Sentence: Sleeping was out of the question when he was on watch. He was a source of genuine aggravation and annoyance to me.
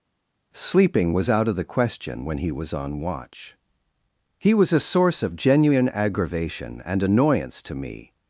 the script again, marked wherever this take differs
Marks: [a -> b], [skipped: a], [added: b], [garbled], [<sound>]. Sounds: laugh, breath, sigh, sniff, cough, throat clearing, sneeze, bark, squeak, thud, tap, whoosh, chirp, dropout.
Sleeping was out of the question when he was on watch. He was a source of genuine aggravation and annoyance to me.